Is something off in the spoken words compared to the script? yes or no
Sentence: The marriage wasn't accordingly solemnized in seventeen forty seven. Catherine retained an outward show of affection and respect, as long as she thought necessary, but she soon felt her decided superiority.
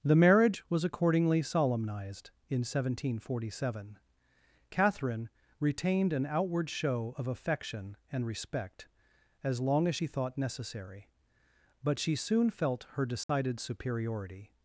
yes